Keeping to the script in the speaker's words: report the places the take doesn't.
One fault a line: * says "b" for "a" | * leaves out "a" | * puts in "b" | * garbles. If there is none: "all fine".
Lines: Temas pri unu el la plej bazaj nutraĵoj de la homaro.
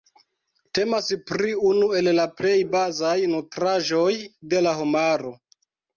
all fine